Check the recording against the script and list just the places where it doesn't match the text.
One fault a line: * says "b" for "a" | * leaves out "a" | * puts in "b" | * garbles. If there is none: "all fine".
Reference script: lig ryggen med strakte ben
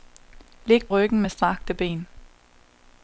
all fine